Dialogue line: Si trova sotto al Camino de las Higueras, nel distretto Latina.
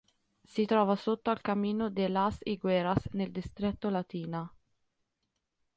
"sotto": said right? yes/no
yes